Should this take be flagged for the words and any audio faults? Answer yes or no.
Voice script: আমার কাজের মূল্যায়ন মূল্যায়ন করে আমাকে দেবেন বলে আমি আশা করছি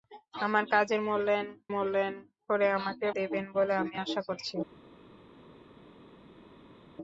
no